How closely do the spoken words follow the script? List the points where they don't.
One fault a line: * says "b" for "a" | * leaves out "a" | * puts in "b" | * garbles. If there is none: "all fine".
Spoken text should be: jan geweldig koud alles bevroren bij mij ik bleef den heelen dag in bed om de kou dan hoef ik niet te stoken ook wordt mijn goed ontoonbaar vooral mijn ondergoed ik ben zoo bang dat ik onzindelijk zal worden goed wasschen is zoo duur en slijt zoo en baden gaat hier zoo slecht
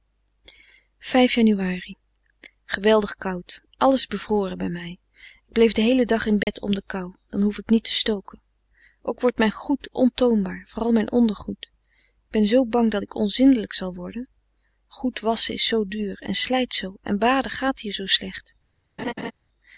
all fine